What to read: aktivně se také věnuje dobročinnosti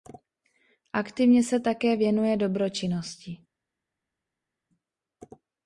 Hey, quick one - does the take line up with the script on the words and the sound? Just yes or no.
yes